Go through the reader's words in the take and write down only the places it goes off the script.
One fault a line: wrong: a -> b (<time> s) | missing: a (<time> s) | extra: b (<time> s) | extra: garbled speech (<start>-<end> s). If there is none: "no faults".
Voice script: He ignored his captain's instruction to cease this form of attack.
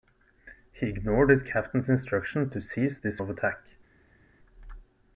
missing: form (3.2 s)